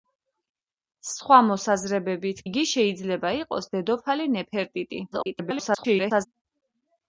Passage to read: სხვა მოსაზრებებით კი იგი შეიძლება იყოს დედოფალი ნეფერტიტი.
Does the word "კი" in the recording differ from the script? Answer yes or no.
yes